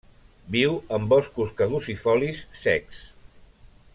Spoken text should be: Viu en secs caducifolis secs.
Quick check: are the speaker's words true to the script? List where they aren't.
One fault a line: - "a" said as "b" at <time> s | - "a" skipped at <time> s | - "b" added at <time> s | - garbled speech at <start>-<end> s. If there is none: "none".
- "secs" said as "boscos" at 1.1 s